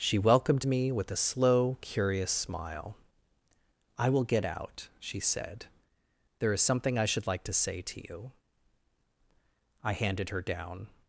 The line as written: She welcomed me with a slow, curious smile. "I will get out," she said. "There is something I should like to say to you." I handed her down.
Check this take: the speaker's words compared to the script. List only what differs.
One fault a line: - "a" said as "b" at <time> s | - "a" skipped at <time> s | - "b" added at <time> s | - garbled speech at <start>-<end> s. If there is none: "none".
none